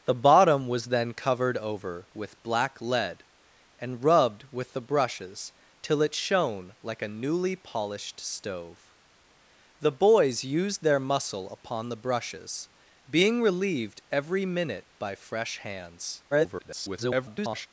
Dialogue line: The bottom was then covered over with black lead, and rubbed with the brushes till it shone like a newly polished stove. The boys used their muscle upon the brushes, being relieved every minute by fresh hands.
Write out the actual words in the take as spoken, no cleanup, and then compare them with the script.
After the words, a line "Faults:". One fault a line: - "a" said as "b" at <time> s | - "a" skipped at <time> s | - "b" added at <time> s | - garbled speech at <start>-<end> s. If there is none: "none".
The bottom was then covered over with black lead, and rubbed with the brushes till it shone like a newly polished stove. The boys used their muscle upon the brushes, being relieved every minute by fresh hands. [garbled]
Faults:
- garbled speech at 16.3-17.7 s